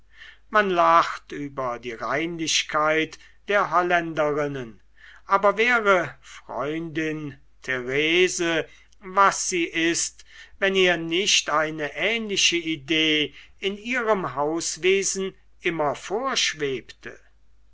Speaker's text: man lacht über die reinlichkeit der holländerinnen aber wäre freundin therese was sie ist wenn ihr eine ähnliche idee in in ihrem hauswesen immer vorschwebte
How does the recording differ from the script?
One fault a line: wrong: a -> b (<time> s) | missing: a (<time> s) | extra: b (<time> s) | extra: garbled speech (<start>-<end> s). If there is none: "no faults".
extra: nicht (11.0 s)
missing: in (13.8 s)